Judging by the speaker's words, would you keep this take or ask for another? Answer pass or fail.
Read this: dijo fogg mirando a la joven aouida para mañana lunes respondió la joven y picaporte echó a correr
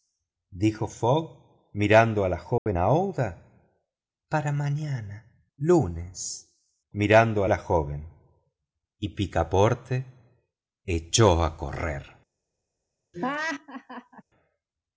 fail